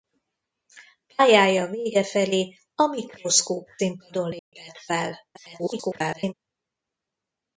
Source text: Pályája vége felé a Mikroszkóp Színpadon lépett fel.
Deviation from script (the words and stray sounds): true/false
true